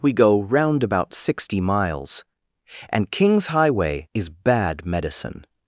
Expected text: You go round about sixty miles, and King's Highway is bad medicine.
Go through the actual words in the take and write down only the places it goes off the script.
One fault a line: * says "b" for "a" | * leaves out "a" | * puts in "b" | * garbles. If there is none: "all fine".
* says "We" for "You"